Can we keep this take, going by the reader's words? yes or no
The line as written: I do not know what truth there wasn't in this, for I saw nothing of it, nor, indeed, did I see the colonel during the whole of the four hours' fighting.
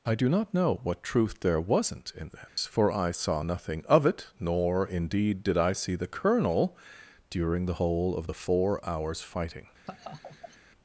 yes